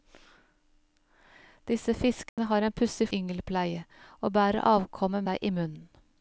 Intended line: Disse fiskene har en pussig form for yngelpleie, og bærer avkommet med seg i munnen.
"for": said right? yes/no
no